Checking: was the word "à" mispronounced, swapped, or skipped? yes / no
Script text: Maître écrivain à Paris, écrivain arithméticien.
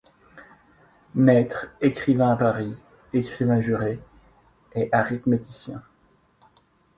no